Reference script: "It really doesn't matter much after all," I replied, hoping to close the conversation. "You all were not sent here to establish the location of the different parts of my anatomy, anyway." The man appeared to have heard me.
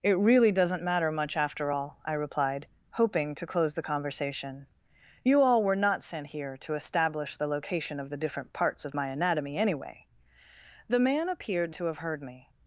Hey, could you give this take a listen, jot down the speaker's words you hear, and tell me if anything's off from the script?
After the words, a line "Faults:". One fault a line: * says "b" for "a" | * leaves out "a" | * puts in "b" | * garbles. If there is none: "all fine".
"It really doesn't matter much after all," I replied, hoping to close the conversation. "You all were not sent here to establish the location of the different parts of my anatomy, anyway." The man appeared to have heard me.
Faults:
all fine